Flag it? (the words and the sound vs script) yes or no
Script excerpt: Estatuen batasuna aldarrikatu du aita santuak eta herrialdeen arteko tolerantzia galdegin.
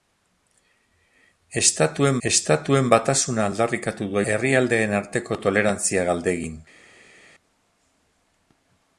yes